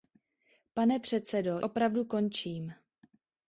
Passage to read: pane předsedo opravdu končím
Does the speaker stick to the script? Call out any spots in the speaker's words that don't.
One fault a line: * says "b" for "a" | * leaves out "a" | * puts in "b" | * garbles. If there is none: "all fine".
all fine